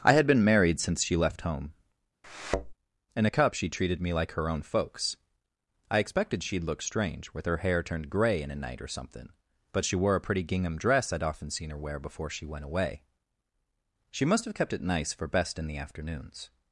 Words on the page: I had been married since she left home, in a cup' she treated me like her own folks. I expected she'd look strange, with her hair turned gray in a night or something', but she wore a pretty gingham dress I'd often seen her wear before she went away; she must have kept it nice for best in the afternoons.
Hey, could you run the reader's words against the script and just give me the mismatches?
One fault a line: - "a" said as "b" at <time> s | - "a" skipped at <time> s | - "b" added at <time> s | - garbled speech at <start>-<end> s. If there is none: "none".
none